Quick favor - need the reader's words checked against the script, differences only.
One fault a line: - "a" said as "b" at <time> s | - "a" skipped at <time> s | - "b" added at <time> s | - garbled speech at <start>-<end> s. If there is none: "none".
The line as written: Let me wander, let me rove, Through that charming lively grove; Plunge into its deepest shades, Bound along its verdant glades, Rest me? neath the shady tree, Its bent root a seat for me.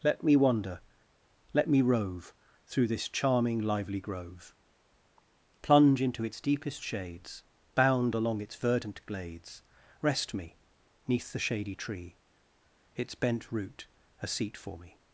- "that" said as "this" at 2.9 s